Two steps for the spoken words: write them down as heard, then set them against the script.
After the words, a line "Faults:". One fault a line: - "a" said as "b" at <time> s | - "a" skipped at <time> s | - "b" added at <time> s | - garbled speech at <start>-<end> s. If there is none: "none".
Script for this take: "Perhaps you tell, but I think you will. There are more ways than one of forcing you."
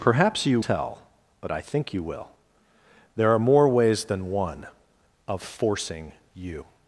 "Perhaps you tell, but I think you will. There are more ways than one of forcing you."
Faults:
none